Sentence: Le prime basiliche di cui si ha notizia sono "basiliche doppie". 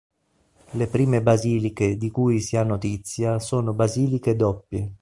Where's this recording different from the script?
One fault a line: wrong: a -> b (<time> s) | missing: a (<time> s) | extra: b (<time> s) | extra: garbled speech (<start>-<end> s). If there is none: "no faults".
no faults